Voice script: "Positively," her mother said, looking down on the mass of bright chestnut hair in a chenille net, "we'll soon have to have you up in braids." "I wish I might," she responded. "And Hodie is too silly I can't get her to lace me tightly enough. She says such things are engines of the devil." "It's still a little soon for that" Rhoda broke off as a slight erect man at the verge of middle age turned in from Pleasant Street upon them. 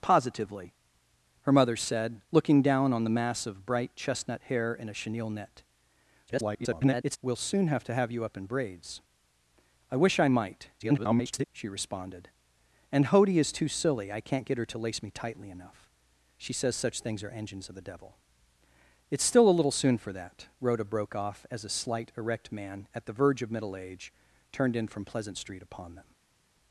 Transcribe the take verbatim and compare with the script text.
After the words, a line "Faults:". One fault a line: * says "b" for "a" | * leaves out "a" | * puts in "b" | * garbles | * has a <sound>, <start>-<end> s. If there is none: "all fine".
"Positively," her mother said, looking down on the mass of bright chestnut hair in a chenille net, [garbled] "we'll soon have to have you up in braids." "I wish I might," [garbled] she responded. "And Hodie is too silly I can't get her to lace me tightly enough. She says such things are engines of the devil." "It's still a little soon for that" Rhoda broke off as a slight erect man at the verge of middle age turned in from Pleasant Street upon them.
Faults:
* garbles
* garbles